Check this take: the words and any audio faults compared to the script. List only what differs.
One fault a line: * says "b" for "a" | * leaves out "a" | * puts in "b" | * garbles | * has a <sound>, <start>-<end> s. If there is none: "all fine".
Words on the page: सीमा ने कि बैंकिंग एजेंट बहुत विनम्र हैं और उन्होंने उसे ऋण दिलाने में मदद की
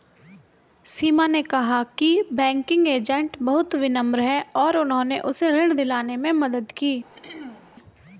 * puts in "कहा"
* has a throat clearing, 7.1-7.7 s